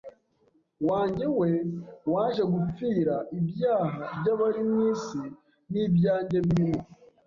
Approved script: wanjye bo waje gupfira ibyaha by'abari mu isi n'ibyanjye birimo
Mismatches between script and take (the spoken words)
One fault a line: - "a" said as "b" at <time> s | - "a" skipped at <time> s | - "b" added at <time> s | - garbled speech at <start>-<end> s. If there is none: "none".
- "bo" said as "we" at 1.4 s